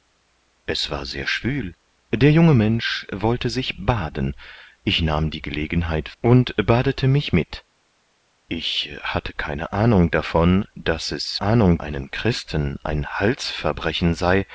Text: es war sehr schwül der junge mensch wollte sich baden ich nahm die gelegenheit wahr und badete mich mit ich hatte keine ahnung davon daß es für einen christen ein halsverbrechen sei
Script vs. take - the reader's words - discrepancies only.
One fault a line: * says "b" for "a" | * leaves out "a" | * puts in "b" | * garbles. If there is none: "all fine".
* leaves out "wahr"
* says "ahnung" for "für"